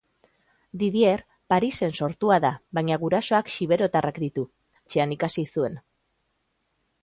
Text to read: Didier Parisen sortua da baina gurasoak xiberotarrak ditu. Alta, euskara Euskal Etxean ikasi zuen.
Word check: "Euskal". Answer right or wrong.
wrong